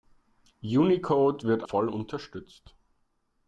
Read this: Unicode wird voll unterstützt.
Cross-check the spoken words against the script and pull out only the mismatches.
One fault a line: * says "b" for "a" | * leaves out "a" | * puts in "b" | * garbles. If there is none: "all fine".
all fine